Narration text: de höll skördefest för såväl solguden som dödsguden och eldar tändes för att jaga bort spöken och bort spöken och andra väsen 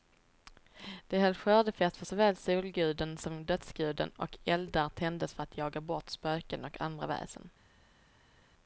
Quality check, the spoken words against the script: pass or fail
fail